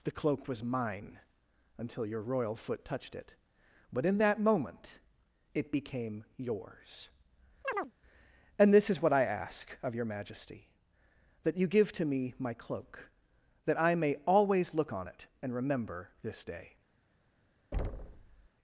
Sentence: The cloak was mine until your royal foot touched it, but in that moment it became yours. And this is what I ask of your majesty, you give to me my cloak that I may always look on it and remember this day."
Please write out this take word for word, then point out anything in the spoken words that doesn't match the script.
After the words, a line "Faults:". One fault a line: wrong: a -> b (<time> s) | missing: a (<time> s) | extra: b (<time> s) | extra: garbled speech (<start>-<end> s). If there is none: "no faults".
The cloak was mine until your royal foot touched it, but in that moment it became yours. And this is what I ask of your majesty, that you give to me my cloak that I may always look on it and remember this day."
Faults:
extra: that (11.4 s)